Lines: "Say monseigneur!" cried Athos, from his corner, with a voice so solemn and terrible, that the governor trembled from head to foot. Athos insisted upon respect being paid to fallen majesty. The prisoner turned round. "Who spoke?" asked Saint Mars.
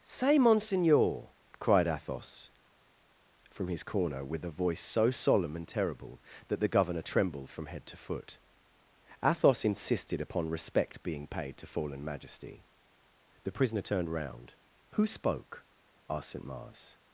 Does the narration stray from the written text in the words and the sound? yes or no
no